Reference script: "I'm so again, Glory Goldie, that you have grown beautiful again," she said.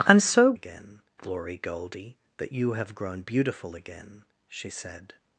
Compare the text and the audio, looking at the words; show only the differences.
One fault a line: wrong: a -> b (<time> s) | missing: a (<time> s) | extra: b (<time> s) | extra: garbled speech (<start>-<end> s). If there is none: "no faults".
no faults